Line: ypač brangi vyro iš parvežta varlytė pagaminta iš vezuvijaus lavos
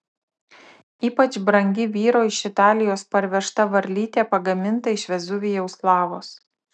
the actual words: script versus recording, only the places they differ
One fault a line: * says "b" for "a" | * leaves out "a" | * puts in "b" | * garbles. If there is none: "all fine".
* puts in "italijos"